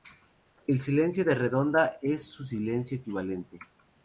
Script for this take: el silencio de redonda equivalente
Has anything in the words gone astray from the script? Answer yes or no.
yes